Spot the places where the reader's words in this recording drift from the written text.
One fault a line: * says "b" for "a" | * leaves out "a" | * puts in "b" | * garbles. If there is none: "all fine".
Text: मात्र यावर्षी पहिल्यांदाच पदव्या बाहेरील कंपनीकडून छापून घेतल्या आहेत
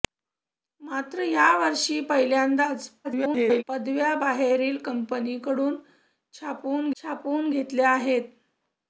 * garbles
* puts in "छापून"